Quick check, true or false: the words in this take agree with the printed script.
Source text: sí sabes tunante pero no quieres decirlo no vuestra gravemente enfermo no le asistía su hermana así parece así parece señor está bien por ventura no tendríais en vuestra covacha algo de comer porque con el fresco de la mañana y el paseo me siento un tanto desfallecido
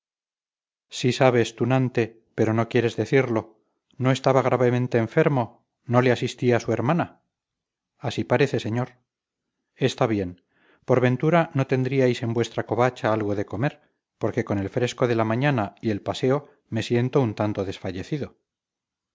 false